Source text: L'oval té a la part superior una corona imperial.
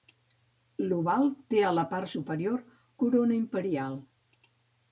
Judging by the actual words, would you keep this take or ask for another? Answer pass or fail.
fail